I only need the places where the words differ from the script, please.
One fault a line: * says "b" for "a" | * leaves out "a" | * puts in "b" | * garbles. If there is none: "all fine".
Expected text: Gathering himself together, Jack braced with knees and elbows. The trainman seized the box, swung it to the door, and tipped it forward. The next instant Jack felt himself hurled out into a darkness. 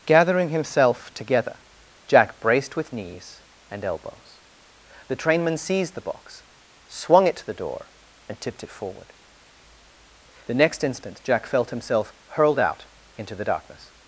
* says "the" for "a"